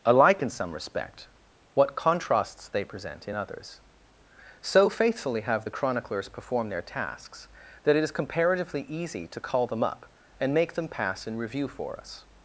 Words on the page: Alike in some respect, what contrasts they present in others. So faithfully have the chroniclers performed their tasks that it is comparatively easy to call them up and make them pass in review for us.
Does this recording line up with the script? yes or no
yes